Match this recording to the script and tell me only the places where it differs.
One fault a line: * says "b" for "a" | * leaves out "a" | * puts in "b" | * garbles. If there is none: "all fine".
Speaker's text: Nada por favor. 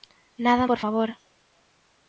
all fine